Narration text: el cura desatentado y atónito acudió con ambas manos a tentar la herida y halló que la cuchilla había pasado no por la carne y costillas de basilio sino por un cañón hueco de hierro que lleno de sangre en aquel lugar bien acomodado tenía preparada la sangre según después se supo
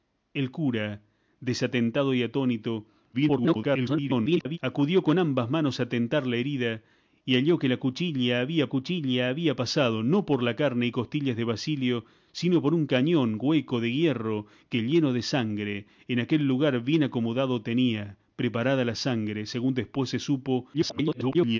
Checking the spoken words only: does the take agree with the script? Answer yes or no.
no